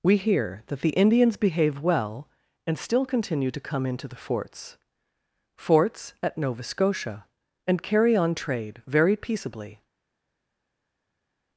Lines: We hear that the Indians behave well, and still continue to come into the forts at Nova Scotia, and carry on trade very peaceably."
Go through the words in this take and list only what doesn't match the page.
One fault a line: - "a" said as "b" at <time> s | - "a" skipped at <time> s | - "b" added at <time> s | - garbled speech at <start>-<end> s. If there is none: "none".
- "forts" added at 5.6 s